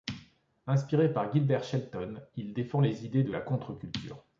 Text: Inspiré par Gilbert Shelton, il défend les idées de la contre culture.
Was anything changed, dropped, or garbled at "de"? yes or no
no